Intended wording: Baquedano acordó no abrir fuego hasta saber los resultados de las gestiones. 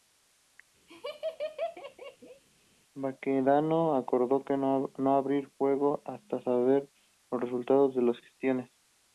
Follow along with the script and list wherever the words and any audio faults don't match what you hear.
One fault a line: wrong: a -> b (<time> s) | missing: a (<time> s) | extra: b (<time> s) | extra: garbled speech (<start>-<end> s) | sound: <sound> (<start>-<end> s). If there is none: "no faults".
sound: laugh (0.9-2.4 s)